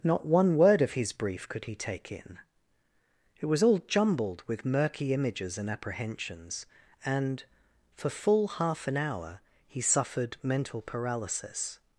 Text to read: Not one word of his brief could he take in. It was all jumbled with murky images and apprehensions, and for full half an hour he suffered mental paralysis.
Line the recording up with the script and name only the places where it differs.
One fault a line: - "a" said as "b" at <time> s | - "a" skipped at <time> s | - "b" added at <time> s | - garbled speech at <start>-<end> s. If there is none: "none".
none